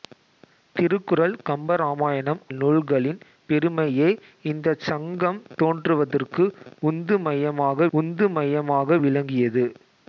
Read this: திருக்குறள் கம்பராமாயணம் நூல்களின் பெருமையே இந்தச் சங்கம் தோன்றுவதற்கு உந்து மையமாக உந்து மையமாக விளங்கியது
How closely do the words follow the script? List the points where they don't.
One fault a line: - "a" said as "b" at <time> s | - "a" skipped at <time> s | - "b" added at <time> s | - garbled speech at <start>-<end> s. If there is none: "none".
none